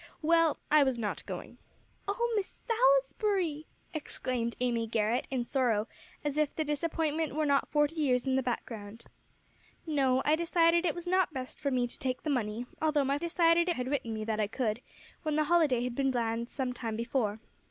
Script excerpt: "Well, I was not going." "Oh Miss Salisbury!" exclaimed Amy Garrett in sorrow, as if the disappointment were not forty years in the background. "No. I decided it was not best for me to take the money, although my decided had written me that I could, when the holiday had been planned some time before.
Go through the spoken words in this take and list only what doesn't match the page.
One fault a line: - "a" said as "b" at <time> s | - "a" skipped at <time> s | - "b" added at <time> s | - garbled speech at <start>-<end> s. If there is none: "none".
none